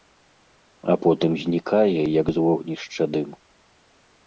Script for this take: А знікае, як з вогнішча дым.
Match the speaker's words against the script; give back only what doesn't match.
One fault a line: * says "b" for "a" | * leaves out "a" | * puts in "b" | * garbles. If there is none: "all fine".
* puts in "потым"